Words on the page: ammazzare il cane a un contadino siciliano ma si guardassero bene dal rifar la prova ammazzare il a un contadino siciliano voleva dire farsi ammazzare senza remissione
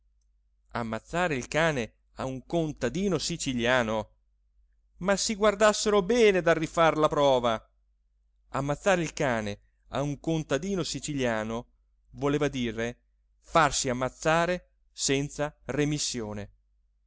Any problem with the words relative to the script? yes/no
yes